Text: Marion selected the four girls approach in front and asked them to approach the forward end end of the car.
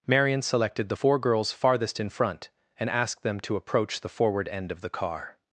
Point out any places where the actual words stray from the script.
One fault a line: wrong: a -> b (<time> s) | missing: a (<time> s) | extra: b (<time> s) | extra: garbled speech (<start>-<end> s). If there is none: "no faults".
wrong: approach -> farthest (1.5 s)
missing: end (4.7 s)